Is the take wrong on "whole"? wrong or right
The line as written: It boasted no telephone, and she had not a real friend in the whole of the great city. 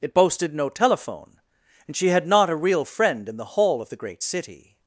wrong